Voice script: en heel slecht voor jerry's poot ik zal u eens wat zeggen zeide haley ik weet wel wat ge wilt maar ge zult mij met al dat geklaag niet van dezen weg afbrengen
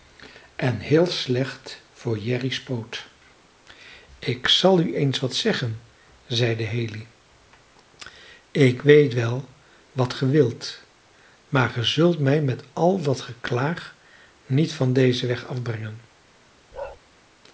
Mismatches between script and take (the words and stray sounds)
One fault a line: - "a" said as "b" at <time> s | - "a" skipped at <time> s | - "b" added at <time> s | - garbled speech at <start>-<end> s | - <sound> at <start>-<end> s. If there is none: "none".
- bark at 16.7-17.0 s